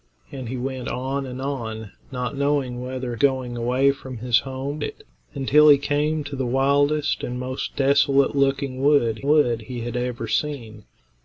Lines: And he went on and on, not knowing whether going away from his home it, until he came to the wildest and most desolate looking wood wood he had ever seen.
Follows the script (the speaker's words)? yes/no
yes